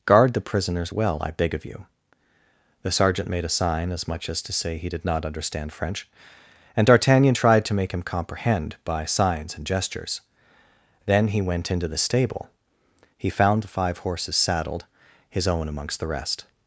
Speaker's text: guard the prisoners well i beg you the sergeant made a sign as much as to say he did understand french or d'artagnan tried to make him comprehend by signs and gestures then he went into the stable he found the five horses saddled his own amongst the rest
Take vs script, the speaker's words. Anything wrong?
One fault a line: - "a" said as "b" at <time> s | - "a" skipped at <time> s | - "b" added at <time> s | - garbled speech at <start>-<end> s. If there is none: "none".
- "of" added at 1.5 s
- "not" added at 5.0 s
- "or" said as "and" at 6.8 s